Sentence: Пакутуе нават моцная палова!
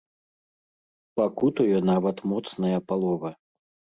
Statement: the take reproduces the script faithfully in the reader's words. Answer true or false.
true